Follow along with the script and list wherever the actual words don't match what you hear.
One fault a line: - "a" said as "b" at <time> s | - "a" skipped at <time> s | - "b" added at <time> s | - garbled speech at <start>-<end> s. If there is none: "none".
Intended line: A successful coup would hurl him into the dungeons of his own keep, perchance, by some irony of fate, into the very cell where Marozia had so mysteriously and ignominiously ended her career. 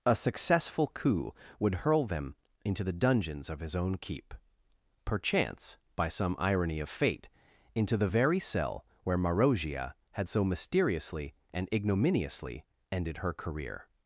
- "him" said as "them" at 2.1 s